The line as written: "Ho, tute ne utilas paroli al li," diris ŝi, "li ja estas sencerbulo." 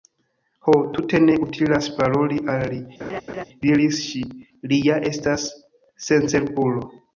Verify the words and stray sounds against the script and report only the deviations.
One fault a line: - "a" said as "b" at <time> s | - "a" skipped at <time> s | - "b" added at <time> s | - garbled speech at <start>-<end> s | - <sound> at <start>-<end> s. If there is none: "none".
- laugh at 3.0-3.5 s